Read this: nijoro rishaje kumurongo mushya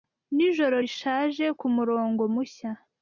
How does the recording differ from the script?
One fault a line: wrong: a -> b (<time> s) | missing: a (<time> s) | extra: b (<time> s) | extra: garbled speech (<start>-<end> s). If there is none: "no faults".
no faults